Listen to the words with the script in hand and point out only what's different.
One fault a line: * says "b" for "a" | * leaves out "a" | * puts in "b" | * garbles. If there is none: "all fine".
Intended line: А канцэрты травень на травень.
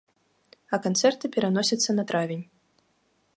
* says "пераносяцца" for "травень"